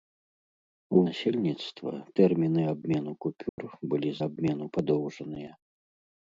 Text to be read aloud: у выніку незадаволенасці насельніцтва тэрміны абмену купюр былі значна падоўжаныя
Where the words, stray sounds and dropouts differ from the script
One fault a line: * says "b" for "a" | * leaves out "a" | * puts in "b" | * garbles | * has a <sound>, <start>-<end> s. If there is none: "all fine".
* leaves out "выніку незадаволенасці"
* has a dropout, 3.5-3.6 s
* says "абмену" for "значна"